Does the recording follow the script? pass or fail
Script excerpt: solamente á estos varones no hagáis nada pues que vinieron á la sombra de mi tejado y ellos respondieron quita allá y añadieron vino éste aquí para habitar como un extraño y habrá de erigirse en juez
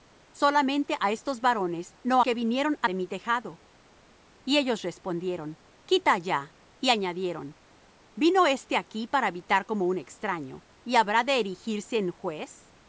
fail